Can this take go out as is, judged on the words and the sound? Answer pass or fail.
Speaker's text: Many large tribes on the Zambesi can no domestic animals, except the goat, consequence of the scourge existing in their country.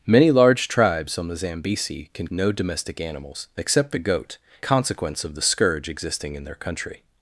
pass